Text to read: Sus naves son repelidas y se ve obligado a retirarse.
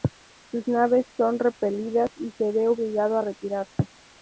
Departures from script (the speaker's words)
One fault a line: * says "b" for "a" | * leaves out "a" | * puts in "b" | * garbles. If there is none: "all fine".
all fine